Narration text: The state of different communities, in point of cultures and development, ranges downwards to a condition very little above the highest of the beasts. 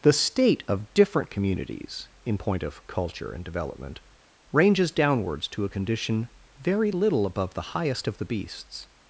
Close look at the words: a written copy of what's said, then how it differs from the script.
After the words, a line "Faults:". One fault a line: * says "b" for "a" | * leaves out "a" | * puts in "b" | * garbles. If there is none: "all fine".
The state of different communities, in point of culture and development, ranges downwards to a condition very little above the highest of the beasts.
Faults:
* says "culture" for "cultures"